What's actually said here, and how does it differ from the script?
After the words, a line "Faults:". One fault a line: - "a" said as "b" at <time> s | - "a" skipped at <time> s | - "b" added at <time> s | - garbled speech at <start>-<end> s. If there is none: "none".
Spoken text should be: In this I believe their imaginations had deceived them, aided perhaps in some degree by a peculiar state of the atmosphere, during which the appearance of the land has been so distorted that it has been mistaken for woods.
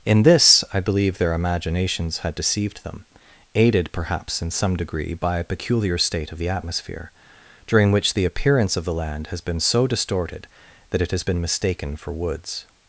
In this I believe their imaginations had deceived them, aided perhaps in some degree by a peculiar state of the atmosphere, during which the appearance of the land has been so distorted that it has been mistaken for woods.
Faults:
none